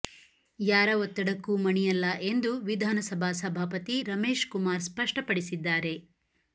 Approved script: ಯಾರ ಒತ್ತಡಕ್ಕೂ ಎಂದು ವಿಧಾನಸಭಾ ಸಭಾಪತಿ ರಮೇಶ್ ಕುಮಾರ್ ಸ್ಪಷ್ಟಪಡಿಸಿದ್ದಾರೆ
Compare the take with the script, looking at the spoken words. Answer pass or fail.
fail